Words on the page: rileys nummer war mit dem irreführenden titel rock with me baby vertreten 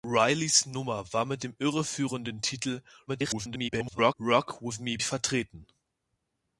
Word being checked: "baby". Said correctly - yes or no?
no